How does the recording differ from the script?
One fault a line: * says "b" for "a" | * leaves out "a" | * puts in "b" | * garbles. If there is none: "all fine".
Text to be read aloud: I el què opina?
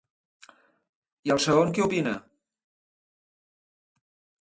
* puts in "segon"